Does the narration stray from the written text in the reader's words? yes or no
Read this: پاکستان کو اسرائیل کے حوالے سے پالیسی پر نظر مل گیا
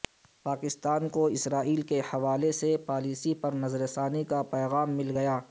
yes